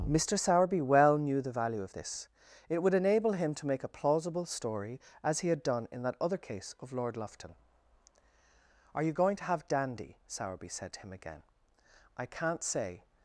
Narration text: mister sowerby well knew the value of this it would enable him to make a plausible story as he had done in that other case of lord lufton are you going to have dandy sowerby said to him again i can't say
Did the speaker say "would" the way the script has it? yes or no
yes